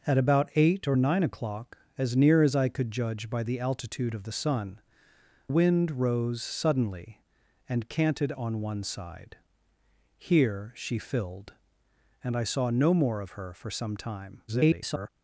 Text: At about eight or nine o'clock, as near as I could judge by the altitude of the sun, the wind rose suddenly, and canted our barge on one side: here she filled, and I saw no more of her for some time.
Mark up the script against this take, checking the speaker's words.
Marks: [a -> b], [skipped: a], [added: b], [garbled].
At about eight or nine o'clock, as near as I could judge by the altitude of the sun, [skipped: the] wind rose suddenly, and canted [skipped: our barge] on one side: here she filled, and I saw no more of her for some time. [garbled]